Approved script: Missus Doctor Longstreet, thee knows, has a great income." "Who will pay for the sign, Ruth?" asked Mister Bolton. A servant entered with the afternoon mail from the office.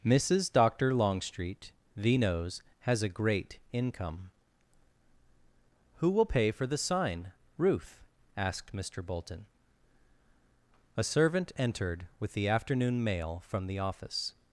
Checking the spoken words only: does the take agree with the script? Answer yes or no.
yes